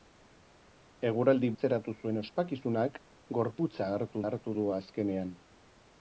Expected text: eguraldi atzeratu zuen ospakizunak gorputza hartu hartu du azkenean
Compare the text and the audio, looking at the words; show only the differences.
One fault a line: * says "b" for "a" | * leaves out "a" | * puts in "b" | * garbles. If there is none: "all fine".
all fine